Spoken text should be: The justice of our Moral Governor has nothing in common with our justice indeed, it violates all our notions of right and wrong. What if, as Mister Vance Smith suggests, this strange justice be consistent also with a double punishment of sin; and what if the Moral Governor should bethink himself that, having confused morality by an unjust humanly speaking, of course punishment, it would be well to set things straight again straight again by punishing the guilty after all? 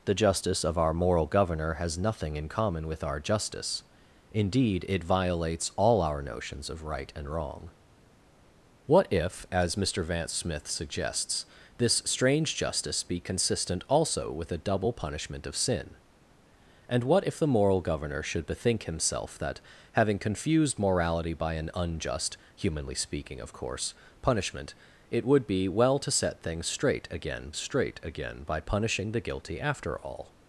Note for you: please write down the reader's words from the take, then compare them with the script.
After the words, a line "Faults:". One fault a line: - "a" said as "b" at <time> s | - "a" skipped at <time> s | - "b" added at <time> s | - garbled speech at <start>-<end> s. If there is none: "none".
The justice of our Moral Governor has nothing in common with our justice indeed, it violates all our notions of right and wrong. What if, as Mister Vance Smith suggests, this strange justice be consistent also with a double punishment of sin; and what if the Moral Governor should bethink himself that, having confused morality by an unjust humanly speaking, of course punishment, it would be well to set things straight again straight again by punishing the guilty after all?
Faults:
none